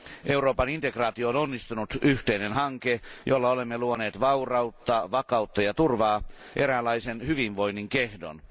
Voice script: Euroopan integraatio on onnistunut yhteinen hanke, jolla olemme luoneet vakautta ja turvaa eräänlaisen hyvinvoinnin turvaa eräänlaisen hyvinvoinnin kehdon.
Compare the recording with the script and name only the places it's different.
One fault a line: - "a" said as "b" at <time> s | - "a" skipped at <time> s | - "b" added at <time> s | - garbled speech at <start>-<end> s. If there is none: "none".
- "vaurautta" added at 4.2 s
- "turvaa eräänlaisen hyvinvoinnin" skipped at 7.9 s